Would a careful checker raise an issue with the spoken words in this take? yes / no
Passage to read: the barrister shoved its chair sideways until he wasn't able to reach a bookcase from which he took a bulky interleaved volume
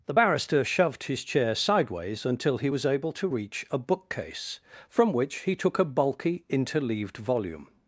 yes